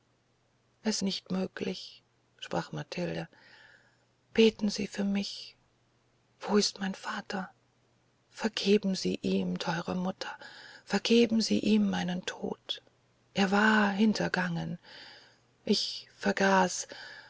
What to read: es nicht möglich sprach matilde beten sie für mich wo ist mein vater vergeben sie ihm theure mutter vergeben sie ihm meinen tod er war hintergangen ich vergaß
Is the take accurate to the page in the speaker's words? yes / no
yes